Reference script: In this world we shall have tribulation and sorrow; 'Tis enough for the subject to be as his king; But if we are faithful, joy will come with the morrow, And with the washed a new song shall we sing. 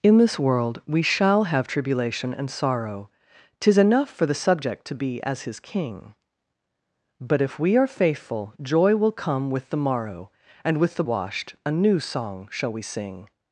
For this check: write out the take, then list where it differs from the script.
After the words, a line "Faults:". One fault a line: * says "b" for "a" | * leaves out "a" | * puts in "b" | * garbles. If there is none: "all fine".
In this world we shall have tribulation and sorrow; 'Tis enough for the subject to be as his king; But if we are faithful, joy will come with the morrow, And with the washed a new song shall we sing.
Faults:
all fine